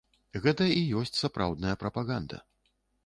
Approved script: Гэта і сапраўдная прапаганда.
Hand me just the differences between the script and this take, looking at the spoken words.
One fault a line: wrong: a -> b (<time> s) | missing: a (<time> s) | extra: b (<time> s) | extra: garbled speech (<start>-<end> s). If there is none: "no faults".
extra: ёсць (1.0 s)